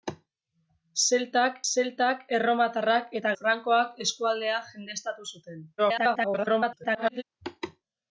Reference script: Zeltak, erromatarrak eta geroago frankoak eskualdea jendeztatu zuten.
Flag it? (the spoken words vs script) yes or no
yes